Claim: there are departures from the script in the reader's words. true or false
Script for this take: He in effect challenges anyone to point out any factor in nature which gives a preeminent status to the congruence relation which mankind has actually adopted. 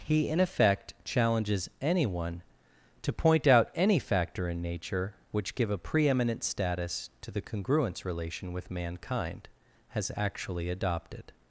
true